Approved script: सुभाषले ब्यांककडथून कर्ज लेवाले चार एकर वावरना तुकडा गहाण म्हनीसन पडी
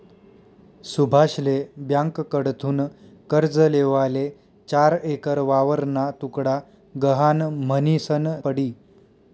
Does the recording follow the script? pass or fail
pass